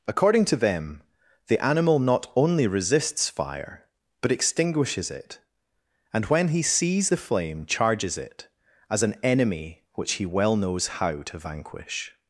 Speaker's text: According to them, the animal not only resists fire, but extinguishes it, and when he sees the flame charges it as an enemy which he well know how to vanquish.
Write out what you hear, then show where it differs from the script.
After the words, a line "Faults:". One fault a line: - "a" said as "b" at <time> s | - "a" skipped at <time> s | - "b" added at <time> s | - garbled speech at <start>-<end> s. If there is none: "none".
According to them, the animal not only resists fire, but extinguishes it, and when he sees the flame charges it as an enemy which he well knows how to vanquish.
Faults:
- "know" said as "knows" at 10.5 s